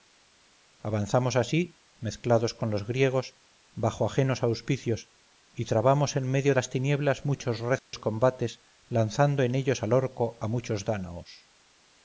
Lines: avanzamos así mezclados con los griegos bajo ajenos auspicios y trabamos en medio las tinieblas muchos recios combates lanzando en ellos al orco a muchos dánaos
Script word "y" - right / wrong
right